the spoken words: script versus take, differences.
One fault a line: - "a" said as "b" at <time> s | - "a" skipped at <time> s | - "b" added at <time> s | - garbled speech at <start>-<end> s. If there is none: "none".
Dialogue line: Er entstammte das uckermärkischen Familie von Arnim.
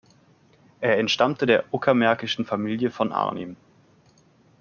- "das" said as "der" at 1.4 s